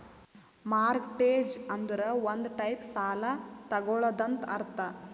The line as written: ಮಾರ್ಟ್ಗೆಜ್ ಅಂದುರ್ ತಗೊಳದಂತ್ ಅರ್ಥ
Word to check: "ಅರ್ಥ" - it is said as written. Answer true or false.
true